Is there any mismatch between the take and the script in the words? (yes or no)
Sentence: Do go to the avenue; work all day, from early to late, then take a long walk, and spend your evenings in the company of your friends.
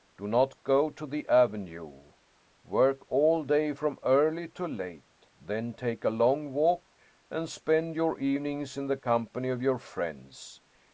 yes